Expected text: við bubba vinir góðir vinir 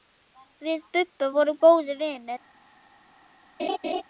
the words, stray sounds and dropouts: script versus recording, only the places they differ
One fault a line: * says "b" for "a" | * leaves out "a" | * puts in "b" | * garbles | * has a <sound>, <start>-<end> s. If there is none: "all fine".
* says "vorum" for "vinir"
* has a laugh, 3.6-4.0 s